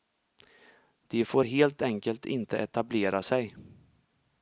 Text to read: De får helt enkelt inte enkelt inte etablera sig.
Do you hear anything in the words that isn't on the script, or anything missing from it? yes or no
yes